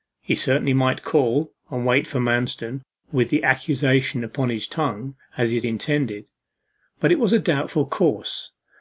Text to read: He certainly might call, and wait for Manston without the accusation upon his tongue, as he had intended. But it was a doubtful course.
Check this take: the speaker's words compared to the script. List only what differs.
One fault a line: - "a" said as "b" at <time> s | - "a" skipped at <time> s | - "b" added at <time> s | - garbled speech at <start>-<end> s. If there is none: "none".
- "without" said as "with" at 3.1 s